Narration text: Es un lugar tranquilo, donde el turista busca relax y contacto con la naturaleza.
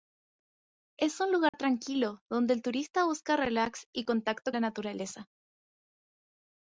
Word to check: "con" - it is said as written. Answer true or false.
false